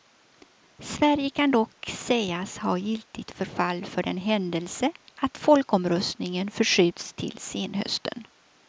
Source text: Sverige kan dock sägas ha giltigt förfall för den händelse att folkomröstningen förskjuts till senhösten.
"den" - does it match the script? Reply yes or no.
yes